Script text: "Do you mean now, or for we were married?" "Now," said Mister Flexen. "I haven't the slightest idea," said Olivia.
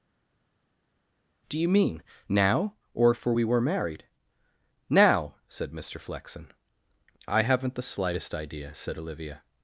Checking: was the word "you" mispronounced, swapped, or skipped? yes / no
no